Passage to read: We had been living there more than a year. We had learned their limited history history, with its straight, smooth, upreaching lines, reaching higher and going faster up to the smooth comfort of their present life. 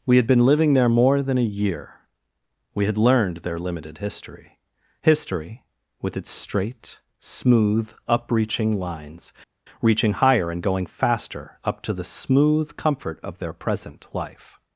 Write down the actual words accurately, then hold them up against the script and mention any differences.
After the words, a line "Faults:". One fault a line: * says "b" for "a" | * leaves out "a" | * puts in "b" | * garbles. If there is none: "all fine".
We had been living there more than a year. We had learned their limited history history, with its straight, smooth, upreaching lines, reaching higher and going faster up to the smooth comfort of their present life.
Faults:
all fine